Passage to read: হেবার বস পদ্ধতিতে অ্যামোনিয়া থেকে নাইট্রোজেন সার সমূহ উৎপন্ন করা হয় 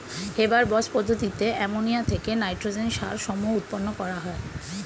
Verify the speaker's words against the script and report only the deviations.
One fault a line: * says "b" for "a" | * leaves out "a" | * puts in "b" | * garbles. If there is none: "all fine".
all fine